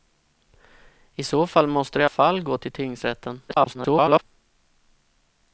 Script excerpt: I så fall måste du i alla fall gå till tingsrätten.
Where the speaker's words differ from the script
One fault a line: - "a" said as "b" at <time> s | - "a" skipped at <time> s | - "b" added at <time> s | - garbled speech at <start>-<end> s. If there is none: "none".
- "alla" skipped at 2.0 s
- garbled speech at 3.5-4.2 s